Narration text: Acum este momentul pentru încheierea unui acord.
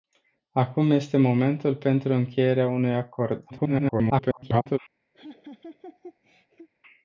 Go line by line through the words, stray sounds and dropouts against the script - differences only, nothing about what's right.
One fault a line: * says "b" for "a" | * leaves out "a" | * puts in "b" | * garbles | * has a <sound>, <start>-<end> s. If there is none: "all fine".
* garbles
* has a laugh, 5.1-6.7 s